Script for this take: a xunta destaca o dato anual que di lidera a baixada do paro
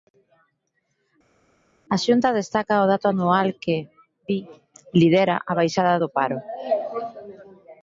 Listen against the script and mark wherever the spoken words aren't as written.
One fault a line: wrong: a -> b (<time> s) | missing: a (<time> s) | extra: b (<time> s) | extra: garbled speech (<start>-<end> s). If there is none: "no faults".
no faults